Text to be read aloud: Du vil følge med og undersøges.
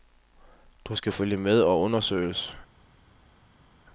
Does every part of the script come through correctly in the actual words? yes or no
no